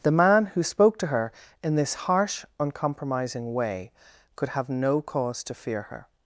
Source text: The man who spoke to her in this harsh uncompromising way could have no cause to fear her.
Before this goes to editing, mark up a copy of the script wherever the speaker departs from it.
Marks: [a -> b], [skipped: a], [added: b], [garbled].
The man who spoke to her in this harsh uncompromising way could have no cause to fear her.